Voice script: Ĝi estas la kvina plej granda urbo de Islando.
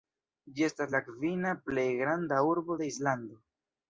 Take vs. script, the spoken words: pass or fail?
pass